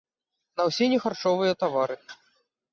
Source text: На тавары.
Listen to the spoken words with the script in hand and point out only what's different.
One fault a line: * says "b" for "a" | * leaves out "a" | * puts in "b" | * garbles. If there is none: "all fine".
* puts in "ўсе нехарчовыя"